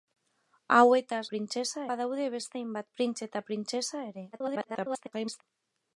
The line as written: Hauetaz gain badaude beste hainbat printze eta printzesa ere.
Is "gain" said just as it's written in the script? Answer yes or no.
no